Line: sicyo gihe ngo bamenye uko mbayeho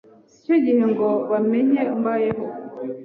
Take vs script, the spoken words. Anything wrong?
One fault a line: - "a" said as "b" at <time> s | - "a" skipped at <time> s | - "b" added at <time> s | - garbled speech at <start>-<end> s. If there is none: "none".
- "uko" skipped at 1.8 s